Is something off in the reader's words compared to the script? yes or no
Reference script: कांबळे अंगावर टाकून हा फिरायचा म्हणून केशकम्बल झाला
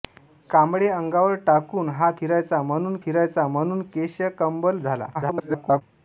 yes